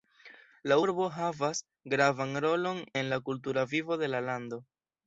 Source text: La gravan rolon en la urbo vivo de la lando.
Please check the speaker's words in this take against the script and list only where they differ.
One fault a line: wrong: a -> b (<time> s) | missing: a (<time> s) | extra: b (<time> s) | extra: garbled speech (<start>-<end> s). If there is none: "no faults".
extra: urbo havas (0.8 s)
wrong: urbo -> kultura (3.3 s)